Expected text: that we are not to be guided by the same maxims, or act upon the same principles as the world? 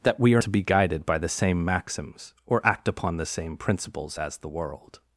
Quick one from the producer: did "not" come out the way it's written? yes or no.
no